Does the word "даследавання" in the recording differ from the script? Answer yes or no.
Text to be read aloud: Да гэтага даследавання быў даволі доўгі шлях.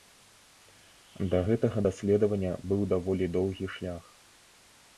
no